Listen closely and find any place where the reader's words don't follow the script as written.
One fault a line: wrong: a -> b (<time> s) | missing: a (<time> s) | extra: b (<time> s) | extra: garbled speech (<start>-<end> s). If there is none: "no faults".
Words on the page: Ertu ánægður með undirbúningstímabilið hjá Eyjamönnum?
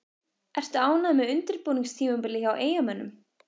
no faults